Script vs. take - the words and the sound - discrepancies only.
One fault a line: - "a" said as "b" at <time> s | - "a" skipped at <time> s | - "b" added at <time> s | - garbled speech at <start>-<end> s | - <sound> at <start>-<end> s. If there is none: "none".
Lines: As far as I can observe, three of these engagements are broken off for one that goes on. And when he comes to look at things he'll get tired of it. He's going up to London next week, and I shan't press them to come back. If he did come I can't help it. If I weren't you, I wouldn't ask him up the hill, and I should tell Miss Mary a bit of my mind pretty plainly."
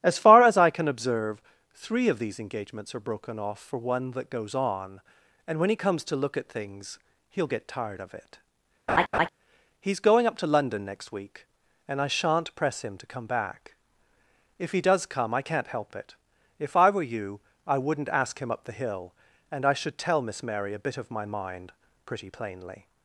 - laugh at 8.9-9.3 s
- "them" said as "him" at 12.8 s
- "did" said as "does" at 14.8 s
- "weren't" said as "were" at 16.9 s